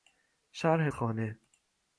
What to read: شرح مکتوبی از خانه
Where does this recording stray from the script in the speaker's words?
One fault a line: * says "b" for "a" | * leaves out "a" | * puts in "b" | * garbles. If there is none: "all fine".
* leaves out "مکتوبی از"